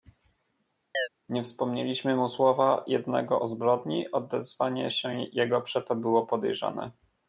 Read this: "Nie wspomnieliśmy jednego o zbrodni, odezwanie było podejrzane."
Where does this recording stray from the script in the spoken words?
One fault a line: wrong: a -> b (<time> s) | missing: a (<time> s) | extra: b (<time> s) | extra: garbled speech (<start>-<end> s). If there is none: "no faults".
extra: mu słowa (2.1 s)
extra: się jego przeto (4.9 s)